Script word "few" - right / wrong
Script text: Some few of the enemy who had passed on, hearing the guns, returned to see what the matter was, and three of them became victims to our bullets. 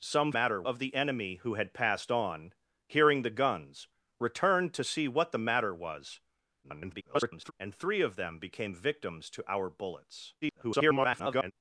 wrong